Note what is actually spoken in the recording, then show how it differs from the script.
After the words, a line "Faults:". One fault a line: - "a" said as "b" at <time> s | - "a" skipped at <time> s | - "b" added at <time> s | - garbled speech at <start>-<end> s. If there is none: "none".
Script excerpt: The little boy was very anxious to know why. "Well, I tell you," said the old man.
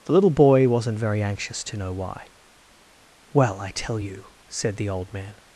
The little boy wasn't very anxious to know why. "Well, I tell you," said the old man.
Faults:
- "was" said as "wasn't" at 0.7 s